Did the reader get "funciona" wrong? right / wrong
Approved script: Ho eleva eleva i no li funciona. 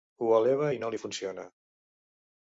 right